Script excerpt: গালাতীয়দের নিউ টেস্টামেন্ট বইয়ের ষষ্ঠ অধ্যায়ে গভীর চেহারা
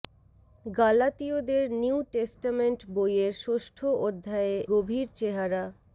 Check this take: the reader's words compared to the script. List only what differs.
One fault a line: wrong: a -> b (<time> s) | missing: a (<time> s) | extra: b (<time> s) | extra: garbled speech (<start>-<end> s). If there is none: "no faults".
no faults